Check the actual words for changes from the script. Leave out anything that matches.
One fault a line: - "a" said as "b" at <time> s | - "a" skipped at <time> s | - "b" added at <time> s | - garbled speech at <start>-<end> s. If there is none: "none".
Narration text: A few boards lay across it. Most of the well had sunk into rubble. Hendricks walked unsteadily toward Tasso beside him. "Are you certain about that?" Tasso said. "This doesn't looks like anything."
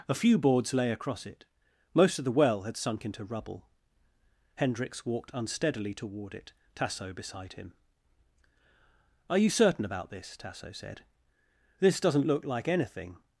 - "it" added at 6.3 s
- "that" said as "this" at 10.1 s
- "looks" said as "look" at 12.3 s